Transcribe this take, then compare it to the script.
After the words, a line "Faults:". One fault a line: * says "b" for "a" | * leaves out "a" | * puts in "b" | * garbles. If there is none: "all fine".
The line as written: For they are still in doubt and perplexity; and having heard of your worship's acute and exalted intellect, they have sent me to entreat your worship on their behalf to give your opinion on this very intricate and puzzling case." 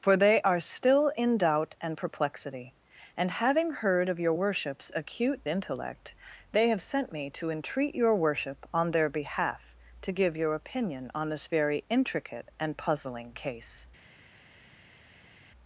For they are still in doubt and perplexity; and having heard of your worship's acute intellect, they have sent me to entreat your worship on their behalf to give your opinion on this very intricate and puzzling case."
Faults:
* leaves out "and exalted"